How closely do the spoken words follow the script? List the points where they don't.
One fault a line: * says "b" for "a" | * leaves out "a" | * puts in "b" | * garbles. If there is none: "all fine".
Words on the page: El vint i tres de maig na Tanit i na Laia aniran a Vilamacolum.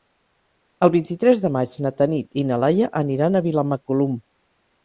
all fine